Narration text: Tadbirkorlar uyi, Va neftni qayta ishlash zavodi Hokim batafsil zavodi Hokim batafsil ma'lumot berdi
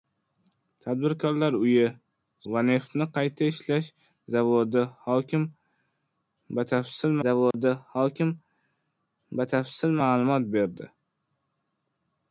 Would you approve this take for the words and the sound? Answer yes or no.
no